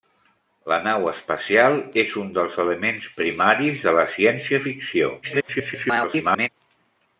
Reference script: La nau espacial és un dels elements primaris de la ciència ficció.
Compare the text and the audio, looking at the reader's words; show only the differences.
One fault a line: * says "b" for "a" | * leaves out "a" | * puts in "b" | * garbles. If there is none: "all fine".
* garbles